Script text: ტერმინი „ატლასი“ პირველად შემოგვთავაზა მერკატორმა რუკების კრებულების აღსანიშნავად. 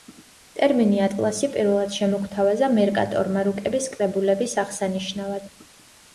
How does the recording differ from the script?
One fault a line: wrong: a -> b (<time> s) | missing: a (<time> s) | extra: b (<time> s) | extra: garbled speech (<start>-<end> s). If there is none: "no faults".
no faults